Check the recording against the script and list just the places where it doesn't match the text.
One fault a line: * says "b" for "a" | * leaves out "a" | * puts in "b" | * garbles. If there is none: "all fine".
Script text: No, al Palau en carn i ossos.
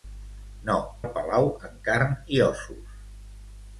all fine